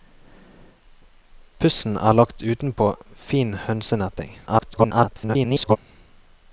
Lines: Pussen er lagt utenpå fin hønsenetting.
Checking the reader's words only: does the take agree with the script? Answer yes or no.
no